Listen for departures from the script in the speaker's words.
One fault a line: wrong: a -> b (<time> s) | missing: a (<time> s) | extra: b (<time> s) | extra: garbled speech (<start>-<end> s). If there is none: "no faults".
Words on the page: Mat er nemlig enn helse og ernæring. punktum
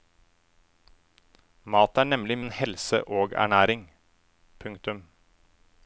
no faults